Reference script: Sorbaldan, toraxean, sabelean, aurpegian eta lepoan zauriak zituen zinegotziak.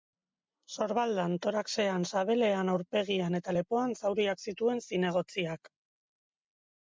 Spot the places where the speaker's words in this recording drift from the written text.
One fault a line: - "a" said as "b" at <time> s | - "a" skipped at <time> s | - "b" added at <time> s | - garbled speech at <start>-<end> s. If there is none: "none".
none